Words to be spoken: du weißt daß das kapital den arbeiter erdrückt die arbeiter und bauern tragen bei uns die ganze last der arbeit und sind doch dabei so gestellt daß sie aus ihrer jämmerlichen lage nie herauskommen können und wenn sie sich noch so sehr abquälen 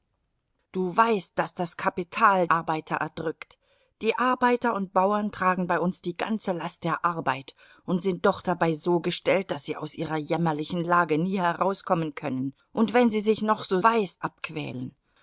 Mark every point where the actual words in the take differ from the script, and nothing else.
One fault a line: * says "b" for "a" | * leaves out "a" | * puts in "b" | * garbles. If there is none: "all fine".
* leaves out "den"
* says "weißt" for "sehr"